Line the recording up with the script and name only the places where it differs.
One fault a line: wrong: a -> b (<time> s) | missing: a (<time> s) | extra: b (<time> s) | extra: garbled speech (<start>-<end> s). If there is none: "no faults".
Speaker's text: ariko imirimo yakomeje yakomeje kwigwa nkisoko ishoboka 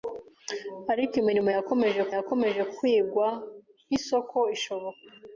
no faults